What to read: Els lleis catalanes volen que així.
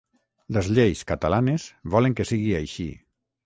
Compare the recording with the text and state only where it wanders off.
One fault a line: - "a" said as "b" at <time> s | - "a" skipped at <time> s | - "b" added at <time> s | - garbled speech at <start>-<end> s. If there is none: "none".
- "Els" said as "Les" at 0.6 s
- "sigui" added at 2.3 s